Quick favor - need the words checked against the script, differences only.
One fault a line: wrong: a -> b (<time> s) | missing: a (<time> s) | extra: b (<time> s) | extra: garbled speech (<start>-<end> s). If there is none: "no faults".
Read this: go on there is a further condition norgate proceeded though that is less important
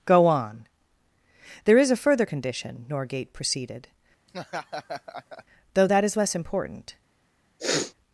no faults